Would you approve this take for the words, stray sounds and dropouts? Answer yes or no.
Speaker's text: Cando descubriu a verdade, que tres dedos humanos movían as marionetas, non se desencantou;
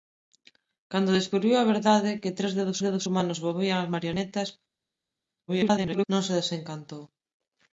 no